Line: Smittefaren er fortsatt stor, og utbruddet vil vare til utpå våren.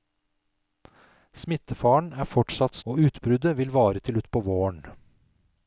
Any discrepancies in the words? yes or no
yes